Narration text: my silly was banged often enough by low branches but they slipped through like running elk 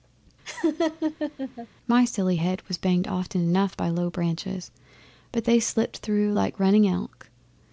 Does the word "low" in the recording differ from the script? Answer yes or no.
no